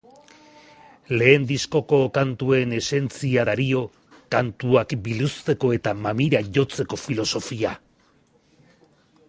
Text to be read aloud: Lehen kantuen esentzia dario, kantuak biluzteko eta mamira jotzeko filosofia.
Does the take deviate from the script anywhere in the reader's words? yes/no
yes